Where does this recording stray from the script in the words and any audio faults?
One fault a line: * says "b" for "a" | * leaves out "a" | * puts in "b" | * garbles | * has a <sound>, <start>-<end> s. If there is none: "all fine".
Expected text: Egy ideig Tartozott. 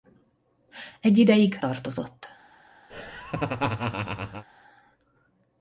* has a laugh, 2.9-4.4 s